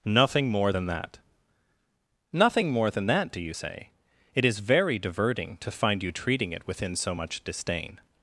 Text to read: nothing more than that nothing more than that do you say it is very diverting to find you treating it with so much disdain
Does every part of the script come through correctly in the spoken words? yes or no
no